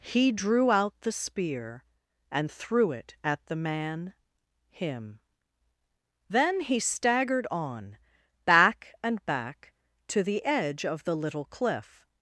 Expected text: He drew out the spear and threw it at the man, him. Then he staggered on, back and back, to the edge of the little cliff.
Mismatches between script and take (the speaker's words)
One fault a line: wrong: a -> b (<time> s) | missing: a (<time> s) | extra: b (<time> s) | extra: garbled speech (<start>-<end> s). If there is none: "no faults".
no faults